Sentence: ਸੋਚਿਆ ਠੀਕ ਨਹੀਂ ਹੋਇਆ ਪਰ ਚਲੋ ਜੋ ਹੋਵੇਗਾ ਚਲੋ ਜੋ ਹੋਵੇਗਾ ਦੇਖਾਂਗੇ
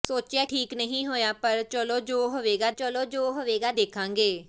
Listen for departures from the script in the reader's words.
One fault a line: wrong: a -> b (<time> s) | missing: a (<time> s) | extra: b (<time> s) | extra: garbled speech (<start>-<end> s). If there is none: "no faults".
no faults